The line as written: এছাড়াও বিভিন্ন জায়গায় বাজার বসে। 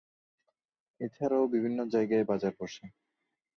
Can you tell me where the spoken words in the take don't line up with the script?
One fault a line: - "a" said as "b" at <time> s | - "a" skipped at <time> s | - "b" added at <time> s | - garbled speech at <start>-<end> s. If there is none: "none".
none